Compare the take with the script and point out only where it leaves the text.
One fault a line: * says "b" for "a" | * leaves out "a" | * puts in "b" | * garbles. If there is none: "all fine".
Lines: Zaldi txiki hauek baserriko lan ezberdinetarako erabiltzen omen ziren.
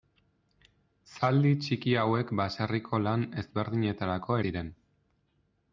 * leaves out "erabiltzen omen"